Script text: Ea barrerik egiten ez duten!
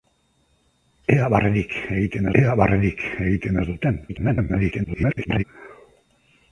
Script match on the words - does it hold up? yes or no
no